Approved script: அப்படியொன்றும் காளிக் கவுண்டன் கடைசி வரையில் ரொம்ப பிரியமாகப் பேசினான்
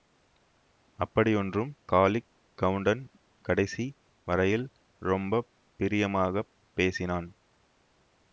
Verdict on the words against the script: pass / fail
pass